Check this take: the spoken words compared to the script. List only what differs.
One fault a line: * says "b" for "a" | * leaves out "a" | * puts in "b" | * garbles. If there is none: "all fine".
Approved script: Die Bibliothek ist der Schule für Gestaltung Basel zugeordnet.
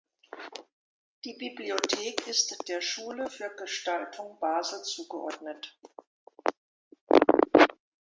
all fine